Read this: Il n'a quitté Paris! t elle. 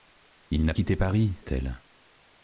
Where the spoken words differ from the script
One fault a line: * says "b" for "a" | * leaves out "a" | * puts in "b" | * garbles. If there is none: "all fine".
all fine